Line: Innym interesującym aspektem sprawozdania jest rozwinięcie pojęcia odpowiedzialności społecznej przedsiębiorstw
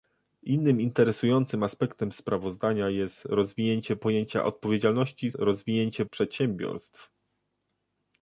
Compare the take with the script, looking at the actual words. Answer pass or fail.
fail